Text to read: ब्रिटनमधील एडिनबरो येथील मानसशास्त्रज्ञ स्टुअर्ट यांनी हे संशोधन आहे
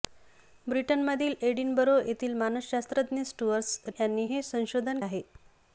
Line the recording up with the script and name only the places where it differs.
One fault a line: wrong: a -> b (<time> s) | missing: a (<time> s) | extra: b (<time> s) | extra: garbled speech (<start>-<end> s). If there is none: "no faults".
no faults